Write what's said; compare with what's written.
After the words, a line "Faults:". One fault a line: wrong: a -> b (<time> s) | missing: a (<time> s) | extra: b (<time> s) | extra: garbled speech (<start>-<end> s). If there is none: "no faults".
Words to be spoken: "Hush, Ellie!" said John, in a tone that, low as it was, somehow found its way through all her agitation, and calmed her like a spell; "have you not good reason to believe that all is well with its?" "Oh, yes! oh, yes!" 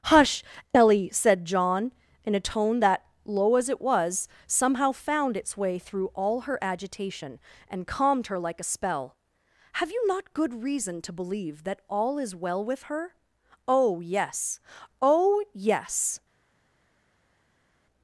"Hush, Ellie!" said John, in a tone that, low as it was, somehow found its way through all her agitation, and calmed her like a spell; "have you not good reason to believe that all is well with her?" "Oh, yes! oh, yes!"
Faults:
wrong: its -> her (12.8 s)